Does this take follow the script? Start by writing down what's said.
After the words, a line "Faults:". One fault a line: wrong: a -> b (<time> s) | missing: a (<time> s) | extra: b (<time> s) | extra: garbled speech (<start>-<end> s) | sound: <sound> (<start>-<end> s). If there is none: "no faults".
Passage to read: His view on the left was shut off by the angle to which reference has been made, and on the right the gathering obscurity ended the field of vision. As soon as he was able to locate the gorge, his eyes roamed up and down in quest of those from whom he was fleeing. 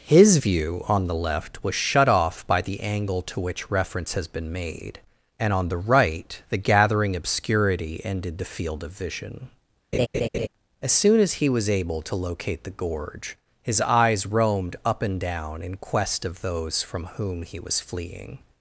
His view on the left was shut off by the angle to which reference has been made, and on the right the gathering obscurity ended the field of vision. As soon as he was able to locate the gorge, his eyes roamed up and down in quest of those from whom he was fleeing.
Faults:
sound: laugh (9.9-10.5 s)